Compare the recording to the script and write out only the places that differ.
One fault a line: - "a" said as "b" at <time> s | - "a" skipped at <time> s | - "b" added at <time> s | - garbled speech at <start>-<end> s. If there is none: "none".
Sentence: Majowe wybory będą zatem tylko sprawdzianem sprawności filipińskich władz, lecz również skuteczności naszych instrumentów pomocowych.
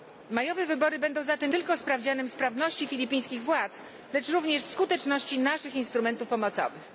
none